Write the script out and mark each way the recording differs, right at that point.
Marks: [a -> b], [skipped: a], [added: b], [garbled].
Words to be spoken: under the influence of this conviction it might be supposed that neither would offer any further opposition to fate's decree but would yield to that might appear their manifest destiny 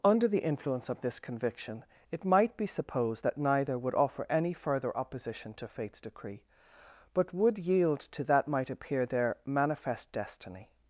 under the influence of this conviction it might be supposed that neither would offer any further opposition to fate's decree but would yield to that might appear their manifest destiny